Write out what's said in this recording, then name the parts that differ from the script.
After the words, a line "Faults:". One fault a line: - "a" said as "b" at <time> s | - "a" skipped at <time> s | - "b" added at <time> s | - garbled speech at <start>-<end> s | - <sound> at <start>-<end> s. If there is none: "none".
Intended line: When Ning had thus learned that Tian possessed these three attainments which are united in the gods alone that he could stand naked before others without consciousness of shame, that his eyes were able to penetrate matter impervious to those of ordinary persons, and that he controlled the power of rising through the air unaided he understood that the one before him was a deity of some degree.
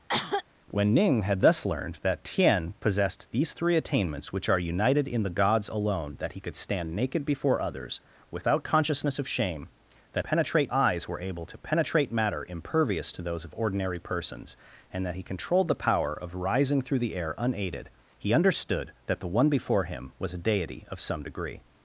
When Ning had thus learned that Tian possessed these three attainments which are united in the gods alone that he could stand naked before others without consciousness of shame, that penetrate eyes were able to penetrate matter impervious to those of ordinary persons, and that he controlled the power of rising through the air unaided he understood that the one before him was a deity of some degree.
Faults:
- cough at 0.1-0.4 s
- "his" said as "penetrate" at 10.2 s